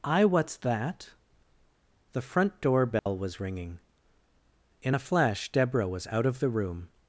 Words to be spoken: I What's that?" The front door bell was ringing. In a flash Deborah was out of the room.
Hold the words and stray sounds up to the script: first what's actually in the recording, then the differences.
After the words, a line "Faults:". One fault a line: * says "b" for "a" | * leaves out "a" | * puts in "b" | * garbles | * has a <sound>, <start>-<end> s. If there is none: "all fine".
I What's that?" The front door bell was ringing. In a flash Deborah was out of the room.
Faults:
* has a dropout, 3.0-3.1 s